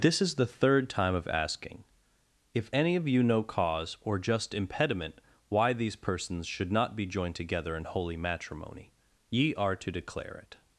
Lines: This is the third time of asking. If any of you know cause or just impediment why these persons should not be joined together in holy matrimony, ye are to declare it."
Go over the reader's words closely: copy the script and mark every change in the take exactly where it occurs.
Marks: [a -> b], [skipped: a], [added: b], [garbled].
This is the third time of asking. If any of you know cause or just impediment why these persons should not be joined together in holy matrimony, ye are to declare it."